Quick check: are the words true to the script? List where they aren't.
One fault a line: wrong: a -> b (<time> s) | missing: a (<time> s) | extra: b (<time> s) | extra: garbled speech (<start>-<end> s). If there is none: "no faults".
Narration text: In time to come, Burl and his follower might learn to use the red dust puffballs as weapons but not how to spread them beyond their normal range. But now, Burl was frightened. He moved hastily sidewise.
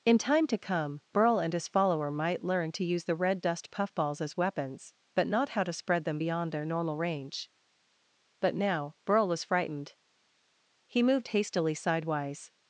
no faults